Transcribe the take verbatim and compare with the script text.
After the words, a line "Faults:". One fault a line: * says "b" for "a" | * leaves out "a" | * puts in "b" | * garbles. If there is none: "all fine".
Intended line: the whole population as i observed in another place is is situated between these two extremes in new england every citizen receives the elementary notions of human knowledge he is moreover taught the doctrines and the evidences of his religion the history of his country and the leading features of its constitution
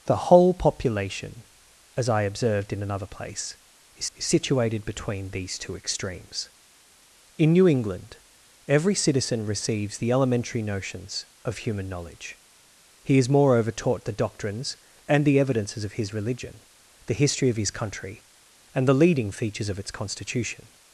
the whole population as i observed in another place is is situated between these two extremes in new england every citizen receives the elementary notions of human knowledge he is moreover taught the doctrines and the evidences of his religion the history of his country and the leading features of its constitution
Faults:
all fine